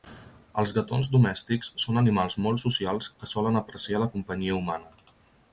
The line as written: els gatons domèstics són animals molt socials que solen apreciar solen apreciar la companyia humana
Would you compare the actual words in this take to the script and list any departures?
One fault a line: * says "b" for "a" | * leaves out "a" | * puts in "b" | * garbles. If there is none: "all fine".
* leaves out "solen apreciar"